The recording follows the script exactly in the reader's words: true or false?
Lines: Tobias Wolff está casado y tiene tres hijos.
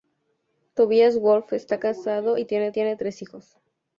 false